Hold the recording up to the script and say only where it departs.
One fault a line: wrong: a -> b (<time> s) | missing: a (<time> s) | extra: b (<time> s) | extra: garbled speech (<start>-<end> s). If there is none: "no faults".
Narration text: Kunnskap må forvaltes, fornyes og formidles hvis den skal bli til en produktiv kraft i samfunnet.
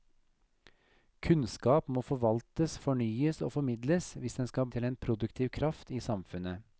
missing: bli (4.7 s)